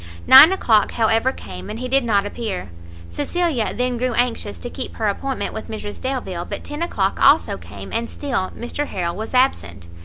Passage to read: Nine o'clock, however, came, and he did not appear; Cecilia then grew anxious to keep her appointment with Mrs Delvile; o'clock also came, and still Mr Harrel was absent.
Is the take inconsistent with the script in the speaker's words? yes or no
yes